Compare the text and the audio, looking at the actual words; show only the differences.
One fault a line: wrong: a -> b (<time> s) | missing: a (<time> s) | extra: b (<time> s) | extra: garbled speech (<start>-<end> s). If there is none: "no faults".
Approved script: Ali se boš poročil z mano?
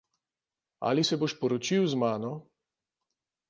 no faults